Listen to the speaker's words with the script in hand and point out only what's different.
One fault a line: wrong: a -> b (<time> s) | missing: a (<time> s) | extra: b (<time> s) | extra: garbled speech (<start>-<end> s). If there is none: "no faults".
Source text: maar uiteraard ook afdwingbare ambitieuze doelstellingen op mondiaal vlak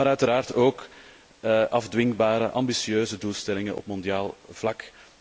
no faults